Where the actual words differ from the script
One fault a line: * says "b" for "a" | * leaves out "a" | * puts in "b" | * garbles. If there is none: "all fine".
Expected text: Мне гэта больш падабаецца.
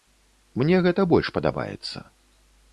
all fine